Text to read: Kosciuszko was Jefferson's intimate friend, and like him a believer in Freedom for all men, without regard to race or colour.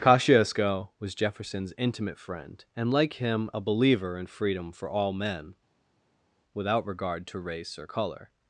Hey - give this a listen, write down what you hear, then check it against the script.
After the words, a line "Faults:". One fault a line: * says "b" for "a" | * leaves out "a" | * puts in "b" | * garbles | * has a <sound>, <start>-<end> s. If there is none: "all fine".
Kosciuszko was Jefferson's intimate friend, and like him a believer in Freedom for all men, without regard to race or colour.
Faults:
all fine